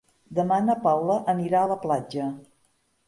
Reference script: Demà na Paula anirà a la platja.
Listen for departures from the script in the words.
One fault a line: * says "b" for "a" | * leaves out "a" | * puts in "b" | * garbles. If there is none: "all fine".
all fine